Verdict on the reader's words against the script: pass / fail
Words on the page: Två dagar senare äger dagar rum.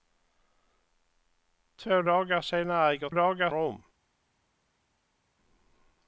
pass